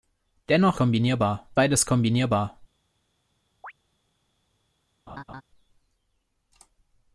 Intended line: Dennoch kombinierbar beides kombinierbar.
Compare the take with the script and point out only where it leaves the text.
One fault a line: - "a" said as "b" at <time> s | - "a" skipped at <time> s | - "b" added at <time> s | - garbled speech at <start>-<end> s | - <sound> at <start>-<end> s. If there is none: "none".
- chirp at 3.6-3.7 s
- laugh at 5.1-5.4 s